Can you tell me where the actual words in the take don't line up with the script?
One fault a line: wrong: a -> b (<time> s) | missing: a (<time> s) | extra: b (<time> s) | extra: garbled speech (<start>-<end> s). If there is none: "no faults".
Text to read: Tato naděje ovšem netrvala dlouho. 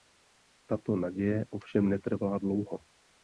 no faults